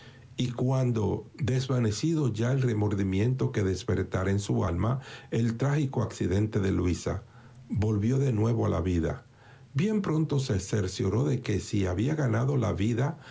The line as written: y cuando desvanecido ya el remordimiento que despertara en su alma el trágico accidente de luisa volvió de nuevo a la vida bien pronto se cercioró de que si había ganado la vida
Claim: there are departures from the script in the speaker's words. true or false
false